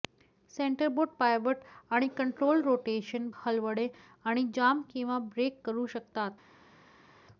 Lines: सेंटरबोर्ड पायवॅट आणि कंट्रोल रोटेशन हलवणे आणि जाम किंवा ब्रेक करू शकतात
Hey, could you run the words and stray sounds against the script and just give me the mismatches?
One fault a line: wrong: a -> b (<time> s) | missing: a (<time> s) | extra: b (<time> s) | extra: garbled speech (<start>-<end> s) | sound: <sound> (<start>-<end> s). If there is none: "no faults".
no faults